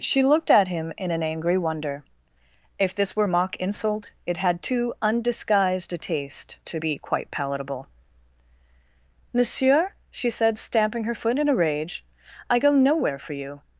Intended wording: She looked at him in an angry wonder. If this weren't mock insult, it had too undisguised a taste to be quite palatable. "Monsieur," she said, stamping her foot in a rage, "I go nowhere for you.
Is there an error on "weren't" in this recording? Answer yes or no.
yes